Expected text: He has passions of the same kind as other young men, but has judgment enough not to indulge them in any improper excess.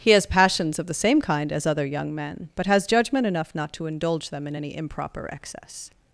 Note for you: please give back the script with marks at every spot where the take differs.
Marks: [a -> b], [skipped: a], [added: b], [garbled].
He has passions of the same kind as other young men, but has judgment enough not to indulge them in any improper excess.